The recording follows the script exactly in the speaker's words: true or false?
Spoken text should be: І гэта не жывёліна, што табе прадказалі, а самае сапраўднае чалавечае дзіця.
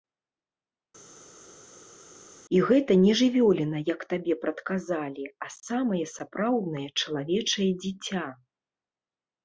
false